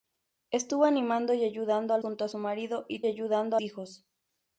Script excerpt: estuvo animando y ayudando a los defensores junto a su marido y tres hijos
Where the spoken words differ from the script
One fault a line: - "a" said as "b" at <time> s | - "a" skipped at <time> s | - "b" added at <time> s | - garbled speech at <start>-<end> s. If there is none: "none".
- "los defensores" skipped at 2.0 s
- "tres" said as "ayudando" at 3.1 s